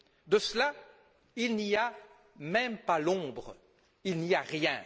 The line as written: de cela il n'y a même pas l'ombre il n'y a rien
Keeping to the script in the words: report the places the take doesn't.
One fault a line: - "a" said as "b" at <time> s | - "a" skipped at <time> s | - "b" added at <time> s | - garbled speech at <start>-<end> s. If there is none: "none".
none